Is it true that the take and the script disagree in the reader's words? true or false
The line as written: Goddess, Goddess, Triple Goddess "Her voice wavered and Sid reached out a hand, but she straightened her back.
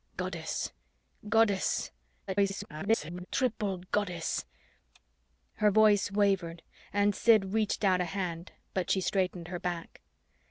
true